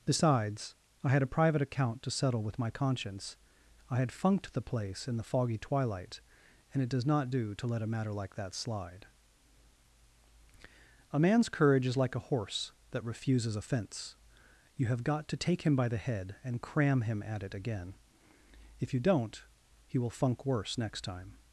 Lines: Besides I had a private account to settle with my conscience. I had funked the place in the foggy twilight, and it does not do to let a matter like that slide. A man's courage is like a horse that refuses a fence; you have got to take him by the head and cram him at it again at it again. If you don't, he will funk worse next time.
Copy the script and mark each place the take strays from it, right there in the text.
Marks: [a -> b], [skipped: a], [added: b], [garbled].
Besides I had a private account to settle with my conscience. I had funked the place in the foggy twilight, and it does not do to let a matter like that slide. A man's courage is like a horse that refuses a fence; you have got to take him by the head and cram him at it again [skipped: at it again.] If you don't, he will funk worse next time.